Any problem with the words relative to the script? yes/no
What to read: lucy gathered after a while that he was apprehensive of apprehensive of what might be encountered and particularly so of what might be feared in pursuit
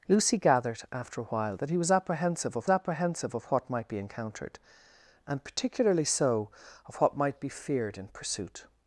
no